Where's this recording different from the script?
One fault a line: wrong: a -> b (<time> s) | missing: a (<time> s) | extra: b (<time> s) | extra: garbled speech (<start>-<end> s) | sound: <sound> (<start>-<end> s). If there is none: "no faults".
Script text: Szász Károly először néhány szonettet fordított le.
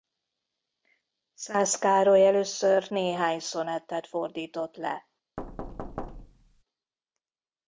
sound: thud (5.4-6.6 s)